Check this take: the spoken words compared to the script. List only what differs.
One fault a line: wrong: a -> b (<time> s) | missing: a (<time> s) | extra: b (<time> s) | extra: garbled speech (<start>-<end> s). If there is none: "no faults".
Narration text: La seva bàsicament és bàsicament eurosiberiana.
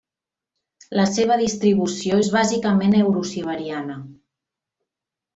wrong: bàsicament -> distribució (1.4 s)